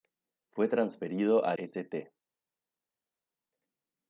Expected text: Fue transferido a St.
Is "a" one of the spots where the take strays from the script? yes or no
no